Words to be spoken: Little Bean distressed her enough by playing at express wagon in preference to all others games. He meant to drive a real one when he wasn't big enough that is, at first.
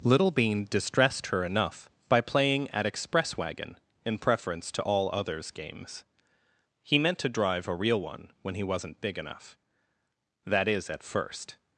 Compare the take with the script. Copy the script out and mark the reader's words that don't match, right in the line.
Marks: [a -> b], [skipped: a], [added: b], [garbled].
Little Bean distressed her enough by playing at express wagon in preference to all others games. He meant to drive a real one when he wasn't big enough that is, at first.